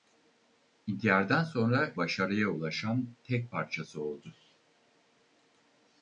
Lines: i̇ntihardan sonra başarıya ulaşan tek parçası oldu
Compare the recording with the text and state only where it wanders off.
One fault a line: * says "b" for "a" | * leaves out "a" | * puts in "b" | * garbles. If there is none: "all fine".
all fine